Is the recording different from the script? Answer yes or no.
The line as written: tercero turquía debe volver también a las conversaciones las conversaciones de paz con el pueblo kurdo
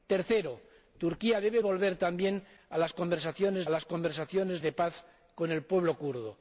no